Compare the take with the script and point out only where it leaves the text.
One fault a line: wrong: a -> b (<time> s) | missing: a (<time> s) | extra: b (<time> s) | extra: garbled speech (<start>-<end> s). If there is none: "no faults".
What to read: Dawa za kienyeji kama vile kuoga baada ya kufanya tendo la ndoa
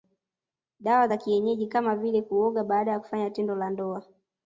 no faults